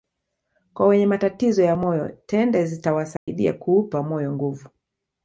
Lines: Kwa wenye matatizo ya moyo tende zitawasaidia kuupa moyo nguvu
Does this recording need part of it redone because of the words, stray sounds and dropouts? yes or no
yes